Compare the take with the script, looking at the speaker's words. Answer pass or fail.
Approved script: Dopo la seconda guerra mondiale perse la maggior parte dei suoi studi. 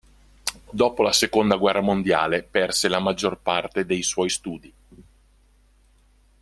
pass